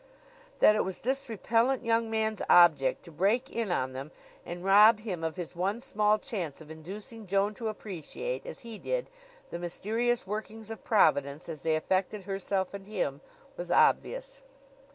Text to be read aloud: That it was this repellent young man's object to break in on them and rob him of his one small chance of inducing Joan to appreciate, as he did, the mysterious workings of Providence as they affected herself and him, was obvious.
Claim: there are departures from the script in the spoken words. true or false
false